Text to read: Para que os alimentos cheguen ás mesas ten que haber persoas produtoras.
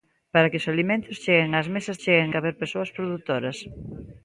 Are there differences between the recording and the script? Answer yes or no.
yes